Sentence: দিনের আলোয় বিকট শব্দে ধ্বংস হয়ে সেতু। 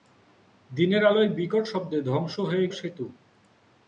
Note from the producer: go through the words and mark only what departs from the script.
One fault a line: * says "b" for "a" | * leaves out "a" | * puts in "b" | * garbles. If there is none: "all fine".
all fine